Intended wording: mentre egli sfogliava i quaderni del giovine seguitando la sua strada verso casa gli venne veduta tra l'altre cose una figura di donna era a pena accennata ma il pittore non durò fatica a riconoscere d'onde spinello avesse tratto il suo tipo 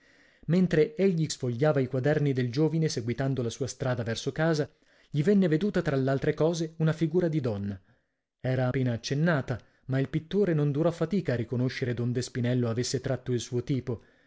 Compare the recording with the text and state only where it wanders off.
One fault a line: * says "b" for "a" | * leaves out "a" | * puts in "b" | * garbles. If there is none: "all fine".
all fine